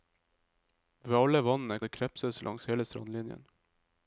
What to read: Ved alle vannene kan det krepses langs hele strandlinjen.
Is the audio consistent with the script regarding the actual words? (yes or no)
no